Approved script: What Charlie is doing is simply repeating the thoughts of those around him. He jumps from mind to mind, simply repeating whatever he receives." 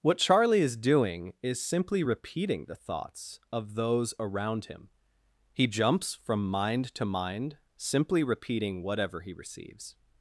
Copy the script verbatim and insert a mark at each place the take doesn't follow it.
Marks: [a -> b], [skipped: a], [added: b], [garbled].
What Charlie is doing is simply repeating the thoughts of those around him. He jumps from mind to mind, simply repeating whatever he receives."